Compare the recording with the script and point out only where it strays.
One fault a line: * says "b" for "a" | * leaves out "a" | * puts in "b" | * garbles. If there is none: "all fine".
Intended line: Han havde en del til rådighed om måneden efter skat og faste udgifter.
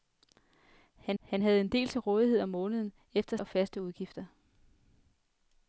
* puts in "han"
* leaves out "skat"